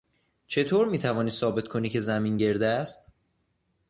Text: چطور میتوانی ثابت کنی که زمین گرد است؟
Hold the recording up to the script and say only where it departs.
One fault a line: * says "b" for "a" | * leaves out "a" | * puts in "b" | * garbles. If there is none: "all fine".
all fine